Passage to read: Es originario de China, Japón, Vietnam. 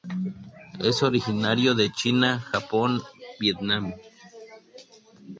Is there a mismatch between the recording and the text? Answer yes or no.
no